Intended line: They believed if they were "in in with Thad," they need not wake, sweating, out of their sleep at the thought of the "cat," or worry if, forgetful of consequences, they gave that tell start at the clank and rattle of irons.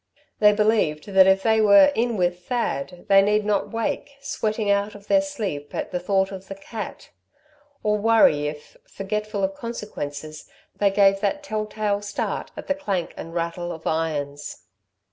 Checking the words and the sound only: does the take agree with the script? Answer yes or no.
no